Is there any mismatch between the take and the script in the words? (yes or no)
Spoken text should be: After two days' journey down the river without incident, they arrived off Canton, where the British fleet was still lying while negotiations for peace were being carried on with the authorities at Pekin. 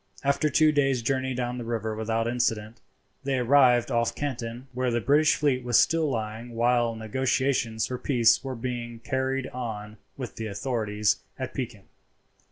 no